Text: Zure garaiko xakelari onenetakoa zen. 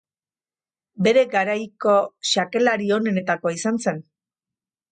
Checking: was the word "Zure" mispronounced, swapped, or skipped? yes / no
yes